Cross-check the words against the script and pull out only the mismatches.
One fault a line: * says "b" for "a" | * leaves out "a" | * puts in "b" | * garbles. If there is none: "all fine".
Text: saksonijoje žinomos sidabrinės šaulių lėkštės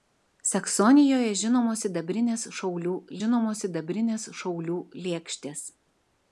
* puts in "žinomos sidabrinės šaulių"